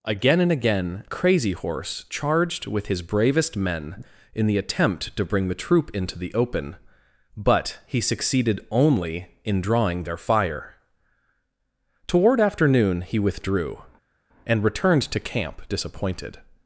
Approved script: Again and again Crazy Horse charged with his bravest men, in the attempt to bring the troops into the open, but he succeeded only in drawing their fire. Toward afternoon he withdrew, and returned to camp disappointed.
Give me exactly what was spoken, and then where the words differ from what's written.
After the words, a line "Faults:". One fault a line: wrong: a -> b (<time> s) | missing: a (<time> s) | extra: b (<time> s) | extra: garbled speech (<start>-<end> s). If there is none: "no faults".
Again and again Crazy Horse charged with his bravest men, in the attempt to bring the troop into the open, but he succeeded only in drawing their fire. Toward afternoon he withdrew, and returned to camp disappointed.
Faults:
wrong: troops -> troop (5.5 s)